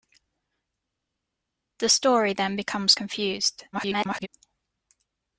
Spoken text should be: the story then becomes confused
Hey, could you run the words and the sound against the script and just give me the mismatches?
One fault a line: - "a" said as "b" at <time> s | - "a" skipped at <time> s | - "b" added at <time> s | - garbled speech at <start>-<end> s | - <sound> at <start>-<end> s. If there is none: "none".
- garbled speech at 3.7-4.3 s